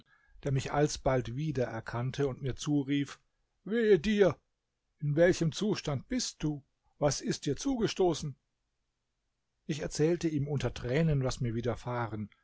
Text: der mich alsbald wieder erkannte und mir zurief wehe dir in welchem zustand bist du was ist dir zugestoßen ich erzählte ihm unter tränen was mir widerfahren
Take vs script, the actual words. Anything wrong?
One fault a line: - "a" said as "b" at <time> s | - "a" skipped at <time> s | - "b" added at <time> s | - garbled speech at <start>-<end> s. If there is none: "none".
none